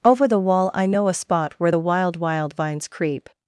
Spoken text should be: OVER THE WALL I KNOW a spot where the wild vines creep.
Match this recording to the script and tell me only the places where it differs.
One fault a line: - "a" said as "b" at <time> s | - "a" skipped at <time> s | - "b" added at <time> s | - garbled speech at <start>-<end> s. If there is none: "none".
- "wild" added at 2.1 s